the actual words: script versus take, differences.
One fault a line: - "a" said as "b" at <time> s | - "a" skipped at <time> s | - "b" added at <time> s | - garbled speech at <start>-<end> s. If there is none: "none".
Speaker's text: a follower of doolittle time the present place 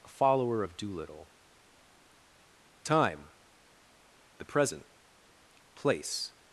none